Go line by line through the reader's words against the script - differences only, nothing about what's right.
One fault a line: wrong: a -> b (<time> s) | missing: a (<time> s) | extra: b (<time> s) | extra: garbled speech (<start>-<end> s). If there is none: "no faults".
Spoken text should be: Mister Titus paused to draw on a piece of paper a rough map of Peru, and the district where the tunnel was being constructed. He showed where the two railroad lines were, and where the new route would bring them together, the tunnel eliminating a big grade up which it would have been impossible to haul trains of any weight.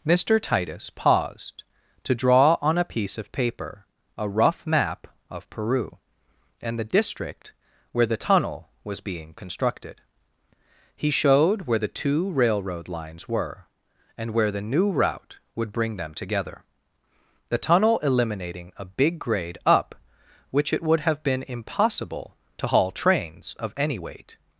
no faults